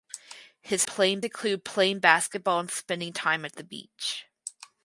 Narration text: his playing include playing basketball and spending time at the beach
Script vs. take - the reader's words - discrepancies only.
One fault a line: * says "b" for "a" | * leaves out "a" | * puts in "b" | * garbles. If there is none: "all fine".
all fine